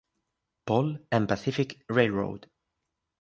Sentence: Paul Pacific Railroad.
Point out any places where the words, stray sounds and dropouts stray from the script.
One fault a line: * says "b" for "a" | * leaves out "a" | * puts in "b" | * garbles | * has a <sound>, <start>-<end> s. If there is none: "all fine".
* puts in "and"